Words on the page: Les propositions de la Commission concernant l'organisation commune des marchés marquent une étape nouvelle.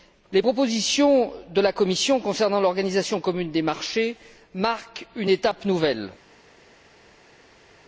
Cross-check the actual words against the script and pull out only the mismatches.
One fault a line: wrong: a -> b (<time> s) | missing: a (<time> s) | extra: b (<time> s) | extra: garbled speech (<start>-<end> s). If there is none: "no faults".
no faults